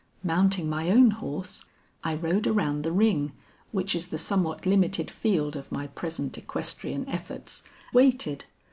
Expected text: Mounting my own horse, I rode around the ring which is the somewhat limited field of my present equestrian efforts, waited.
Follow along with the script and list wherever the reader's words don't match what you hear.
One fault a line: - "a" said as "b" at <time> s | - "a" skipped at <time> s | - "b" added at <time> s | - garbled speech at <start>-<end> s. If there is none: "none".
none